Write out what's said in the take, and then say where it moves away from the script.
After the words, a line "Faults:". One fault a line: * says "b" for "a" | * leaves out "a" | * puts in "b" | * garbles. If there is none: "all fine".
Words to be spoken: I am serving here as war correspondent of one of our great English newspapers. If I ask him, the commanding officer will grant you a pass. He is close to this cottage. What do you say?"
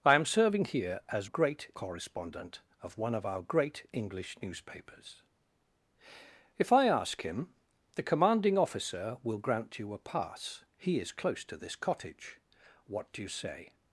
I am serving here as great correspondent of one of our great English newspapers. If I ask him, the commanding officer will grant you a pass. He is close to this cottage. What do you say?"
Faults:
* says "great" for "war"